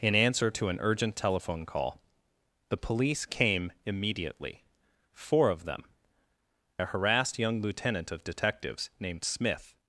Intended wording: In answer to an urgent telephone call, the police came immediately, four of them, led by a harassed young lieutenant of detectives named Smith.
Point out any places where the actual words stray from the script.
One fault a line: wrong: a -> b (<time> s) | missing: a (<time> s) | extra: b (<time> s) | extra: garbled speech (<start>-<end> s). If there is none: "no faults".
missing: led by (5.8 s)